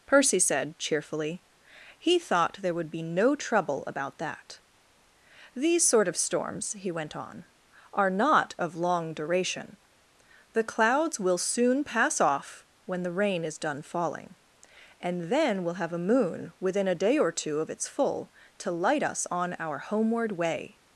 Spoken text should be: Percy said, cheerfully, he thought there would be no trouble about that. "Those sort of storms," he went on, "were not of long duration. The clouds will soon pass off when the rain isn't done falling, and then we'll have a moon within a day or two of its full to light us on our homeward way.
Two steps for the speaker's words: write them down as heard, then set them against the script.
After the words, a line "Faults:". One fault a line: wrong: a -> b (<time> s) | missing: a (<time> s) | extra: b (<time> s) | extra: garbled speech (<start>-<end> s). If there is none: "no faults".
Percy said, cheerfully, he thought there would be no trouble about that. "These sort of storms," he went on, "are not of long duration. The clouds will soon pass off when the rain is done falling, and then we'll have a moon within a day or two of its full to light us on our homeward way.
Faults:
wrong: Those -> These (5.5 s)
wrong: were -> are (7.9 s)
wrong: isn't -> is (13.4 s)